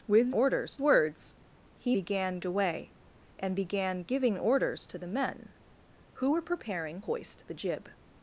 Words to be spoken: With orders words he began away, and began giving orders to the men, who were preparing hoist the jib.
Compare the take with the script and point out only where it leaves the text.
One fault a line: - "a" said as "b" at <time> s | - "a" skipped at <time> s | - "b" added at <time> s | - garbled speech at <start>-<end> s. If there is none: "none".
none